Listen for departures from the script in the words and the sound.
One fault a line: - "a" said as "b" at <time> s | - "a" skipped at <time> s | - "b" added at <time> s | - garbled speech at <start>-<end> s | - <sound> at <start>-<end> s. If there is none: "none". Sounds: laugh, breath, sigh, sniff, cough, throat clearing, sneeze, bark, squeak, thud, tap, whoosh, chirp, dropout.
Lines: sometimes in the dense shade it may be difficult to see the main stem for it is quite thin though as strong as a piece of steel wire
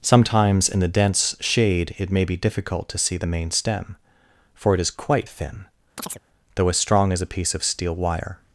- chirp at 6.0-6.2 s